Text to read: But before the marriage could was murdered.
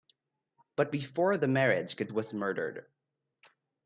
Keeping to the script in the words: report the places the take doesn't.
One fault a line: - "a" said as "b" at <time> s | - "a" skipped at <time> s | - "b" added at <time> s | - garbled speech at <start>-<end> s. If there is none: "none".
none